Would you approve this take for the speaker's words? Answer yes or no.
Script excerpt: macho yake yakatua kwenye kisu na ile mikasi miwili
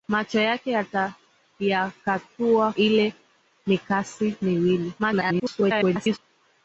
no